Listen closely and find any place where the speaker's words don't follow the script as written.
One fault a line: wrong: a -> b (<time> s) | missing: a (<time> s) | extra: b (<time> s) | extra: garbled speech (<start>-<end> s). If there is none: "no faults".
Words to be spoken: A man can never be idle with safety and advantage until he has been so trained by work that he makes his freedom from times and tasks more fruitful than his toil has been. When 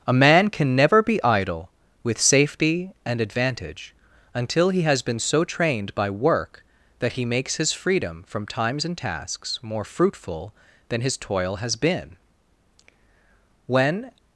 no faults